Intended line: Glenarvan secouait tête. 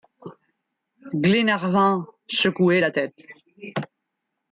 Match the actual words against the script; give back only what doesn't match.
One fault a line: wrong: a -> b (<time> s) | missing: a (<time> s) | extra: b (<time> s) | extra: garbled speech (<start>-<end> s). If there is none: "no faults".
extra: la (2.8 s)